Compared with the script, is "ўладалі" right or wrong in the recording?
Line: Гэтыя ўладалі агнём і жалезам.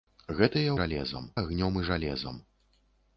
wrong